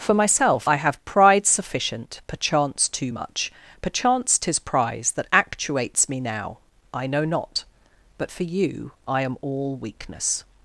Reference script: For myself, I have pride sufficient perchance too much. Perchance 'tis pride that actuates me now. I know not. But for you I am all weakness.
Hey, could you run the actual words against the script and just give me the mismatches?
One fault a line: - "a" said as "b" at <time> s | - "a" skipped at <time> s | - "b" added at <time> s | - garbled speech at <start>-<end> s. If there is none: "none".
- "pride" said as "prize" at 4.6 s